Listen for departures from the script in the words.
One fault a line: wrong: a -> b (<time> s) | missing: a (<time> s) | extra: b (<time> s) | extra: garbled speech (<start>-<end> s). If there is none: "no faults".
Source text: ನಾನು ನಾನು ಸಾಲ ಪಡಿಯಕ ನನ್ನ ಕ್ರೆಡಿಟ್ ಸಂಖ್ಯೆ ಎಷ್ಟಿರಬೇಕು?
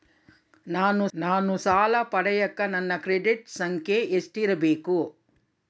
no faults